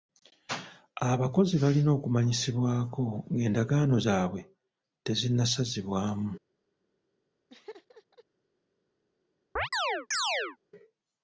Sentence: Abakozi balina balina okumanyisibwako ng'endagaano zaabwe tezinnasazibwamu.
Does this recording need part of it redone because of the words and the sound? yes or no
yes